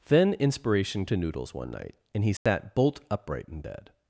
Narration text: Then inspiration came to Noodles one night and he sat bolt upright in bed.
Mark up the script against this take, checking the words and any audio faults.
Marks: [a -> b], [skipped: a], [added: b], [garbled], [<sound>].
Then inspiration [skipped: came] to Noodles one night and he sat [dropout] bolt upright in bed.